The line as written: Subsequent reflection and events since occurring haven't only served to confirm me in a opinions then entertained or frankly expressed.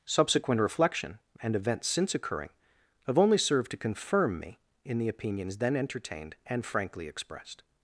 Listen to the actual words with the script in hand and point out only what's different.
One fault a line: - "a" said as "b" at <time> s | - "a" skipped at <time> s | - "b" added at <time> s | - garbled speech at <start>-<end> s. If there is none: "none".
- "haven't" said as "have" at 3.1 s
- "a" said as "the" at 5.0 s
- "or" said as "and" at 6.5 s